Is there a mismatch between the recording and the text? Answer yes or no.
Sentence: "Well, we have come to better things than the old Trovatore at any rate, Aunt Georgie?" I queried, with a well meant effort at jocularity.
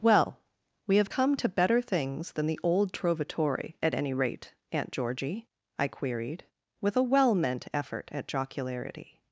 no